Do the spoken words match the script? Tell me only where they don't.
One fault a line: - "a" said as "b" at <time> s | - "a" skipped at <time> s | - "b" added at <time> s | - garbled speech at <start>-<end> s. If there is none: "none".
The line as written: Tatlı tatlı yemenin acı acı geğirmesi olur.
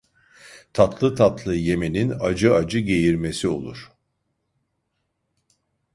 none